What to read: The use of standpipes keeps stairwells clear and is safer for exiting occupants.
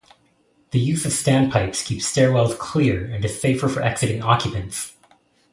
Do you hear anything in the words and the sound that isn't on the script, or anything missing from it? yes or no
no